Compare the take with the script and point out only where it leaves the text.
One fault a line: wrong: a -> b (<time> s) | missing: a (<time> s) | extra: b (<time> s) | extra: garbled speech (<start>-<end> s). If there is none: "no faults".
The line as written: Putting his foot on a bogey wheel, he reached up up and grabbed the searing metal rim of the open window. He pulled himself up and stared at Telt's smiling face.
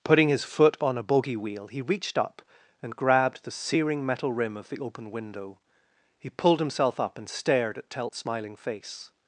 missing: up (2.4 s)